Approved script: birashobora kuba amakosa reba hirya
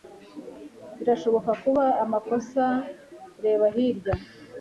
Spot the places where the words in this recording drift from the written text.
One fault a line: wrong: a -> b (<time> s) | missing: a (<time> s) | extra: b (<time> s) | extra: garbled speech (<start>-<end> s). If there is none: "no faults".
no faults